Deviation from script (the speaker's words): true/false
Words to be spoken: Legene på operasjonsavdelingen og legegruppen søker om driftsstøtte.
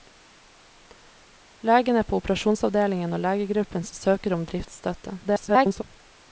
true